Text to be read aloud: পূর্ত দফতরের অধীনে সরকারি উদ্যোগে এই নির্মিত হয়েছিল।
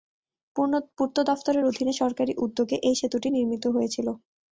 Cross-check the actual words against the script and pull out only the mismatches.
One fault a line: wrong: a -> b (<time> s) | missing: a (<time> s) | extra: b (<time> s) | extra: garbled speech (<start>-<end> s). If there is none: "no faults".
extra: সেতুটি (3.0 s)